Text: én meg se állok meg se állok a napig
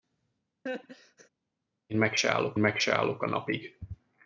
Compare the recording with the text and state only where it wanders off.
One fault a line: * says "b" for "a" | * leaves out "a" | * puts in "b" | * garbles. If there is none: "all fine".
all fine